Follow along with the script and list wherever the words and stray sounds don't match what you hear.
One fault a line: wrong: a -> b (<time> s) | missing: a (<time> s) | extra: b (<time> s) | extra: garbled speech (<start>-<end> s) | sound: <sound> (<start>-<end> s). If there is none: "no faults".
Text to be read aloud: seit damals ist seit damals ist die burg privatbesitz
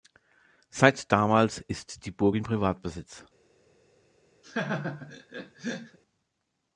missing: seit damals ist (2.1 s)
extra: in (2.3 s)
sound: laugh (4.4-6.0 s)